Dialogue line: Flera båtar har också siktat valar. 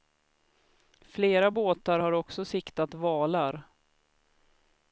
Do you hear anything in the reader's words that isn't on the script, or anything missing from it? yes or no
no